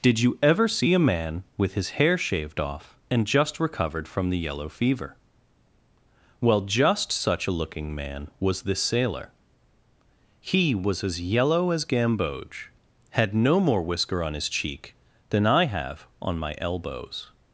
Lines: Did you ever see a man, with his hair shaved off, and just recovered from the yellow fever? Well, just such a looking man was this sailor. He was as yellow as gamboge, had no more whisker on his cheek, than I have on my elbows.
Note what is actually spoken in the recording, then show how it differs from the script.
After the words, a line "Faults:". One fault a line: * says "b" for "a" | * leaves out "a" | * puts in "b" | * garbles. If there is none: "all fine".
Did you ever see a man, with his hair shaved off, and just recovered from the yellow fever? Well, just such a looking man was this sailor. He was as yellow as gamboge, had no more whisker on his cheek, than I have on my elbows.
Faults:
all fine